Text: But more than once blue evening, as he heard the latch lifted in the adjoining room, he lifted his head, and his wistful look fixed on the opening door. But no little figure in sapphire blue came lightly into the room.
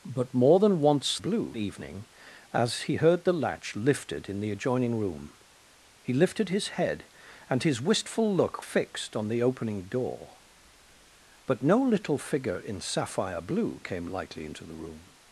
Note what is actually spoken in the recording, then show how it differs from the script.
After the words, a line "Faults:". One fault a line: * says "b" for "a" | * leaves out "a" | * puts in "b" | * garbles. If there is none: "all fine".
But more than once blue evening, as he heard the latch lifted in the adjoining room, he lifted his head, and his wistful look fixed on the opening door. But no little figure in sapphire blue came lightly into the room.
Faults:
all fine